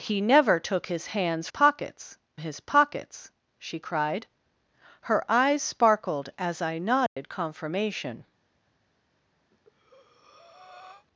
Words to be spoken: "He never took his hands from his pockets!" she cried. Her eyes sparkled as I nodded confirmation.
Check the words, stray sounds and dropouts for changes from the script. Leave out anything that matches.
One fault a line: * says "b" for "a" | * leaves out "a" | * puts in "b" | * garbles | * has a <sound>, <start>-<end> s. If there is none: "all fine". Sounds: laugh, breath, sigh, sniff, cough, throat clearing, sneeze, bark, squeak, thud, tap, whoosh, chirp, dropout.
* says "pockets" for "from"
* has a dropout, 7.1-7.2 s
* has a breath, 9.5-11.1 s